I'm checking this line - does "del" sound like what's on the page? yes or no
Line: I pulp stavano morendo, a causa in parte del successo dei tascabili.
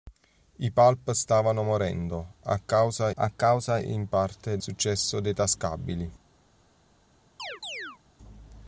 no